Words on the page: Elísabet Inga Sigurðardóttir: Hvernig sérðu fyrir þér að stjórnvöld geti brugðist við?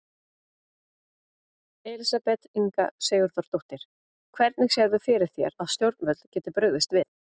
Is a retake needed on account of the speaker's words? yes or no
no